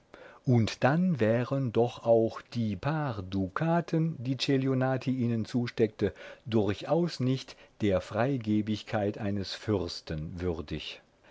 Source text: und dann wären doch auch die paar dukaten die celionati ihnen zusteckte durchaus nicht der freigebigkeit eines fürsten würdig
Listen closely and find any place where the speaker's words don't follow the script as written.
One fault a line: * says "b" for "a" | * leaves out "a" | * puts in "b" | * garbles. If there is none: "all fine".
all fine